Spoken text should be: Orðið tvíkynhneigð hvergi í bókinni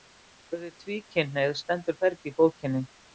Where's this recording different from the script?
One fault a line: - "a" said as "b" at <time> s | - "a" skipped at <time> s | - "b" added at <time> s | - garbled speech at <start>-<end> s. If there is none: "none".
- "stendur" added at 1.6 s